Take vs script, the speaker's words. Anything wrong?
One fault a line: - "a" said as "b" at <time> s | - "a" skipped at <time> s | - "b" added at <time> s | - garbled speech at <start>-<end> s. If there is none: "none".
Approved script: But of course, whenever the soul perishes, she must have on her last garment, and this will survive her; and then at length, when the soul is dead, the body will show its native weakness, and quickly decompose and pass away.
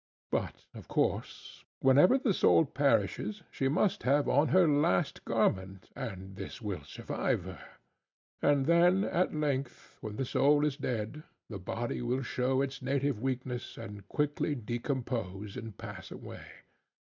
none